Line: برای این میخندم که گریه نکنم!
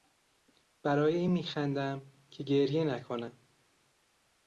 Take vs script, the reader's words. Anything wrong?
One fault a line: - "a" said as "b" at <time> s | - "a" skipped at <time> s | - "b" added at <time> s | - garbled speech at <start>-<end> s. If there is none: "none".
none